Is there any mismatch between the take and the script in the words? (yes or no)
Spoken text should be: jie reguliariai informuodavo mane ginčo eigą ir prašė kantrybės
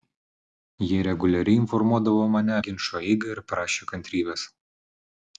no